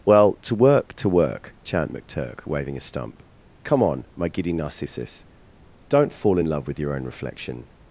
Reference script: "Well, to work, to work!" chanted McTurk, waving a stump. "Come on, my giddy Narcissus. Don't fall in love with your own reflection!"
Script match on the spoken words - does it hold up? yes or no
no